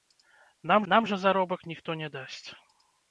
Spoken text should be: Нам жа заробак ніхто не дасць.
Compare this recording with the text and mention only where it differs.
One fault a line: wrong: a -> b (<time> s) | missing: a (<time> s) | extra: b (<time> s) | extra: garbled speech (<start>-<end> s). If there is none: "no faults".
extra: нам (0.9 s)